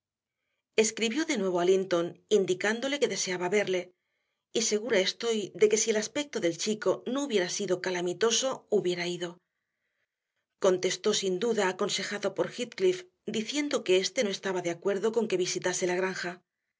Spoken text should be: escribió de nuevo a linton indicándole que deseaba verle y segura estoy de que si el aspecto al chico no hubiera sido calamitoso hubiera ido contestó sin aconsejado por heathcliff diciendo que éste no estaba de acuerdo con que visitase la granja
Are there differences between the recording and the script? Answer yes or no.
yes